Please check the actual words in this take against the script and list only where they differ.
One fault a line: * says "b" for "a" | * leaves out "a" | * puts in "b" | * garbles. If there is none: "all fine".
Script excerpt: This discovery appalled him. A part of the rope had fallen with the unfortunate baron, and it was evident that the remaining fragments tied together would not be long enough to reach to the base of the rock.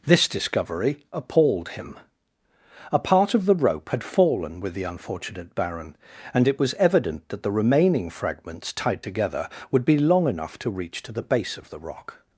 * leaves out "not"